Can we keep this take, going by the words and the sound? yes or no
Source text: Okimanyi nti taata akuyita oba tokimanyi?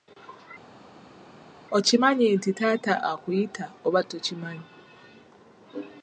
yes